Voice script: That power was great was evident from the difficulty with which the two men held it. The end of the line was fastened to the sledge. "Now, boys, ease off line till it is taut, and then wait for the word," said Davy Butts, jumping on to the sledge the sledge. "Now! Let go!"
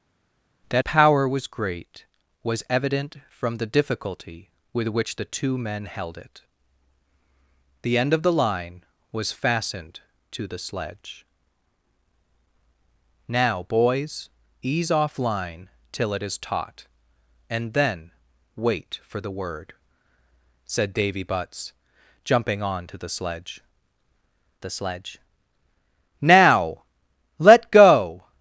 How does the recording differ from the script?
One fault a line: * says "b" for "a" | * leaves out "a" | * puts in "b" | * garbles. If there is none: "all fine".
all fine